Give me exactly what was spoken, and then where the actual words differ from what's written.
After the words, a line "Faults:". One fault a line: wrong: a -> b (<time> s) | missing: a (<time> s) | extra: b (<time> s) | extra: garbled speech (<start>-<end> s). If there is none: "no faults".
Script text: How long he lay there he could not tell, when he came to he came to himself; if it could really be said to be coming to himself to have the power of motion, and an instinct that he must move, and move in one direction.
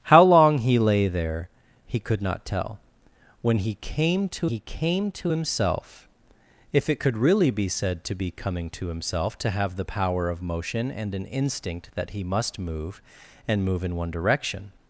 How long he lay there he could not tell, when he came to he came to himself; if it could really be said to be coming to himself to have the power of motion, and an instinct that he must move, and move in one direction.
Faults:
no faults